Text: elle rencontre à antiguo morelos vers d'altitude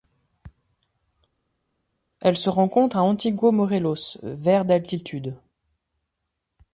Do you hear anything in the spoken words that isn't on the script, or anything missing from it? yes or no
yes